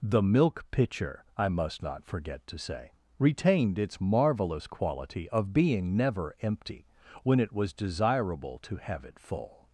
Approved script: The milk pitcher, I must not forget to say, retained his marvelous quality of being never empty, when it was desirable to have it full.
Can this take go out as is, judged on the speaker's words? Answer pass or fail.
fail